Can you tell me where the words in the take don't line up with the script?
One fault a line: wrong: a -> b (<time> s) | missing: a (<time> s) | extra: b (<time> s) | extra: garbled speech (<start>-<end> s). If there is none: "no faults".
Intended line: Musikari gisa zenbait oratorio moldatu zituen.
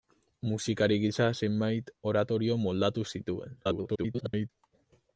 extra: garbled speech (3.6-4.5 s)